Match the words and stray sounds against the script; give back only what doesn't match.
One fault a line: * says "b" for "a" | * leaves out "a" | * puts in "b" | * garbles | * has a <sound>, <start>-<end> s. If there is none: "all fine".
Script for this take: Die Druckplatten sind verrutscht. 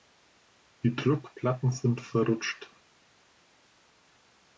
all fine